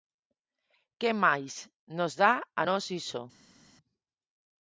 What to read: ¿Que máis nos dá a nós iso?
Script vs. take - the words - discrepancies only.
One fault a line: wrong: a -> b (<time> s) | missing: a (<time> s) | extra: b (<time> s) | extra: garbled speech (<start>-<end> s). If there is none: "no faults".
no faults